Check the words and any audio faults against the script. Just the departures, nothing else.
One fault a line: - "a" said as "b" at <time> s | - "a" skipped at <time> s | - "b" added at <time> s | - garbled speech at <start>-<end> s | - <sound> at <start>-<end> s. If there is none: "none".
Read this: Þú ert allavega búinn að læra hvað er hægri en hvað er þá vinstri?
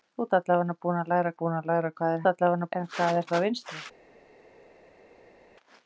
- "búinn að læra" added at 1.4 s
- "hægri" said as "allavega" at 2.3 s